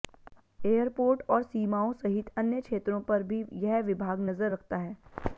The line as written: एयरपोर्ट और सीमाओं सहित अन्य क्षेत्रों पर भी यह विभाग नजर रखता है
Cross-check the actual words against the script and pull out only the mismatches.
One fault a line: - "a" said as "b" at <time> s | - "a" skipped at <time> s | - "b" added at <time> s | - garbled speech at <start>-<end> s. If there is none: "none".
none